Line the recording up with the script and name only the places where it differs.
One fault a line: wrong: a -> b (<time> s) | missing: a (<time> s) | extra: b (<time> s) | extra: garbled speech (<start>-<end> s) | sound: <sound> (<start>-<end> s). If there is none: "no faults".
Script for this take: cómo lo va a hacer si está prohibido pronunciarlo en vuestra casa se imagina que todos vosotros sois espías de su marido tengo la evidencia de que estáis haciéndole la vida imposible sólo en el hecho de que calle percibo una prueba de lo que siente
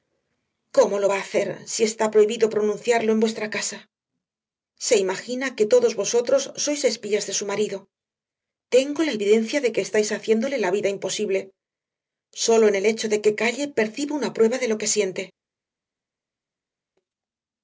no faults